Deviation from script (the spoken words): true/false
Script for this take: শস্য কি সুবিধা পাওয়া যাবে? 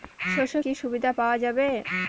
false